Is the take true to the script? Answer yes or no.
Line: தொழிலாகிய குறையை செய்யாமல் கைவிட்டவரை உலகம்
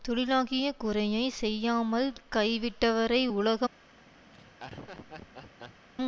yes